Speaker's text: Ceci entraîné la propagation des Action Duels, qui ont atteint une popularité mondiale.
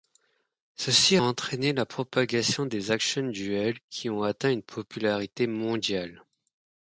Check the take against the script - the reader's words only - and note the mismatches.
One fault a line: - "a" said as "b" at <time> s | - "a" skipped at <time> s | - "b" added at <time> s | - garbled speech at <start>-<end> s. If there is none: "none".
none